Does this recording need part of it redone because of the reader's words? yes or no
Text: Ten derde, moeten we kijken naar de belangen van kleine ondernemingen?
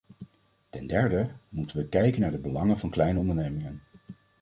no